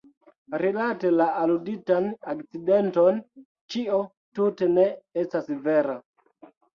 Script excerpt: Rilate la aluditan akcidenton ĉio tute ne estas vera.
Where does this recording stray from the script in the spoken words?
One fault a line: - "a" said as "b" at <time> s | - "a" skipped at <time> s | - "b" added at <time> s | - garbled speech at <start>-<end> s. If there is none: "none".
none